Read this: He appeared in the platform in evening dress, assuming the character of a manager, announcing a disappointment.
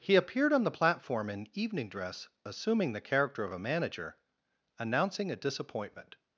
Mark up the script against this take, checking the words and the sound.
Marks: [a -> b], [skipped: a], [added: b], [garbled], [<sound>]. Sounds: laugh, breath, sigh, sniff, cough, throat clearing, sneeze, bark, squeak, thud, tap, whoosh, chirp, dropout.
He appeared [in -> on] the platform in evening dress, assuming the character of a manager, announcing a disappointment.